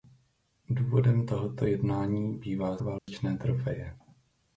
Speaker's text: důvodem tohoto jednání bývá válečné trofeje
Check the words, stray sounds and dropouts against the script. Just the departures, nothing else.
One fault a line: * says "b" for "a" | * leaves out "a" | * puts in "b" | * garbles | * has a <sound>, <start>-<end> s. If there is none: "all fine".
* has a dropout, 3.0-3.1 s